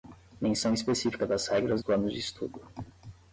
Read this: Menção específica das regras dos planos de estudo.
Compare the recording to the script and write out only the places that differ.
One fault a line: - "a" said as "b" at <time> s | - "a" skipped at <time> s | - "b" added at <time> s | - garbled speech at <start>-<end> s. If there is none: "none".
- "dos" skipped at 1.8 s